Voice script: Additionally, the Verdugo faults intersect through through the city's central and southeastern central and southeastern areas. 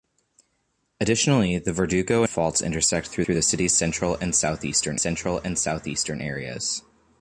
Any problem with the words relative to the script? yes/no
no